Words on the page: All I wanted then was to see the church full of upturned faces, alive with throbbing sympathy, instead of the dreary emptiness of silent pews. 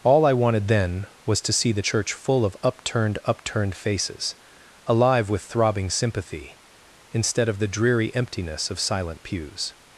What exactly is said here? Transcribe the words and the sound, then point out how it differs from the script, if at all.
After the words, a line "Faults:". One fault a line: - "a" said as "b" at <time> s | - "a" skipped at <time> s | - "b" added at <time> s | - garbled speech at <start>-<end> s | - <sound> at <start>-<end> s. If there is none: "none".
All I wanted then was to see the church full of upturned upturned faces, alive with throbbing sympathy, instead of the dreary emptiness of silent pews.
Faults:
- "upturned" added at 3.2 s